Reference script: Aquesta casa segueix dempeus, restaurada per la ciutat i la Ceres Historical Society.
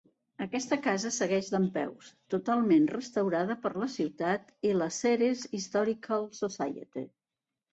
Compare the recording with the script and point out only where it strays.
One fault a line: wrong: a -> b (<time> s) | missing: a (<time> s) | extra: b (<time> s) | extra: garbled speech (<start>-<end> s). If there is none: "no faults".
extra: totalment (2.4 s)